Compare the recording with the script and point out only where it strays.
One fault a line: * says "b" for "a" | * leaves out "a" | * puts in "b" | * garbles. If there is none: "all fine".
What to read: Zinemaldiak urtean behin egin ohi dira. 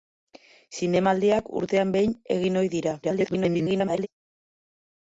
* garbles